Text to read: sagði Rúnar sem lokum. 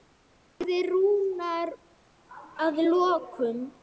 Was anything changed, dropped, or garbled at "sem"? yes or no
yes